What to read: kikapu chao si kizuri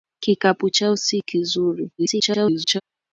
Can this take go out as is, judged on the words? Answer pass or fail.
fail